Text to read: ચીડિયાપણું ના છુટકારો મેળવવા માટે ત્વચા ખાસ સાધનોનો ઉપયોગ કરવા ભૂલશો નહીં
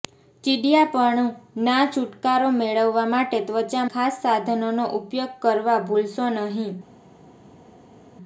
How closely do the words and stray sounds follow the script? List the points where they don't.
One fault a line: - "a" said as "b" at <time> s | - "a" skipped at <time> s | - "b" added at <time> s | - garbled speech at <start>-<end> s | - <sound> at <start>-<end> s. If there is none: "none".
none